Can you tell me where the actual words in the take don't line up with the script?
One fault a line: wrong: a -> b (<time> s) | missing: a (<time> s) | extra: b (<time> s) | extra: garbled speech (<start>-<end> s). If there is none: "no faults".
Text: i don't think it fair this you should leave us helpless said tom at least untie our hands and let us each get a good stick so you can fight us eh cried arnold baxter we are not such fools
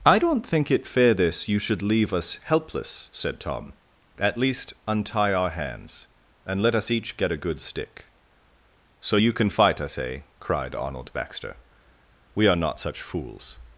no faults